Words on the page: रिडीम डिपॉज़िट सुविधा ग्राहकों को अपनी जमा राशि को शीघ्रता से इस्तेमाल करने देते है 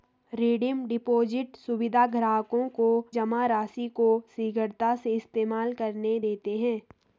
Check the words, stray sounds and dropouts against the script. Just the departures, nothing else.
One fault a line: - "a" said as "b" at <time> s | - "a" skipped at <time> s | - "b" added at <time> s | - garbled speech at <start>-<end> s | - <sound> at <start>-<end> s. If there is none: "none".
- "अपनी" skipped at 2.9 s